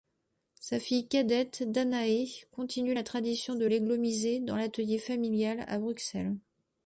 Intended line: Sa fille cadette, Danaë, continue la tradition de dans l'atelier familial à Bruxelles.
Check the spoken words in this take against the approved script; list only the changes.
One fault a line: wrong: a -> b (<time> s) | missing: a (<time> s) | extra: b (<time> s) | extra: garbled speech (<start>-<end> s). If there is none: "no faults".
extra: l'églomisé (3.6 s)